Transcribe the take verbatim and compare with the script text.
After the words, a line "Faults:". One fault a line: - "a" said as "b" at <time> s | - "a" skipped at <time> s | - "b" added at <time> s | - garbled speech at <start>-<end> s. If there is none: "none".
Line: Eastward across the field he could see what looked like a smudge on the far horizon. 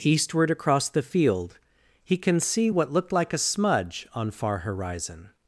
Eastward across the field he can see what looked like a smudge on far horizon.
Faults:
- "could" said as "can" at 2.2 s
- "the" skipped at 4.3 s